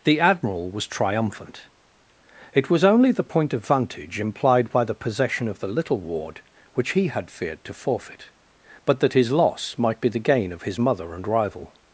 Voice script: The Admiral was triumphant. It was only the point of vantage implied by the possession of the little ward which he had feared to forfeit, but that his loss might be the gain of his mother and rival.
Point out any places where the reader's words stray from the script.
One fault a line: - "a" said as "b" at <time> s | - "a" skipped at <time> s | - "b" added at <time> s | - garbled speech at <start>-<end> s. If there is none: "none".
none